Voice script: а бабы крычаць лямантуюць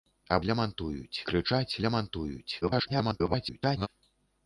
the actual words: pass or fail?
fail